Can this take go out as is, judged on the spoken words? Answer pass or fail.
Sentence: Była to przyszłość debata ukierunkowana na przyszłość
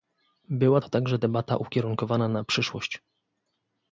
fail